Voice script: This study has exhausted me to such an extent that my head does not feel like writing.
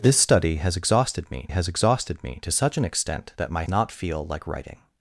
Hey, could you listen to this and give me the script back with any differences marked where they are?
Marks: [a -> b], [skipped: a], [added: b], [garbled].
This study has exhausted me [added: has exhausted me] to such an extent that my [skipped: head does] not feel like writing.